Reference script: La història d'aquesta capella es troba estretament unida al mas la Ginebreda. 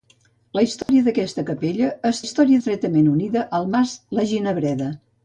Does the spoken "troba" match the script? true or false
false